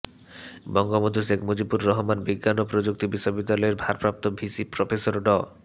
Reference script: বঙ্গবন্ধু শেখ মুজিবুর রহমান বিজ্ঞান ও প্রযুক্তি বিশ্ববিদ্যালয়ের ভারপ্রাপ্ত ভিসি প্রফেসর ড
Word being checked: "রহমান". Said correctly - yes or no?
yes